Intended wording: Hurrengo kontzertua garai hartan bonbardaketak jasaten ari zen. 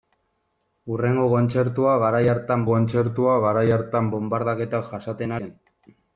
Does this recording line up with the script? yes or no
no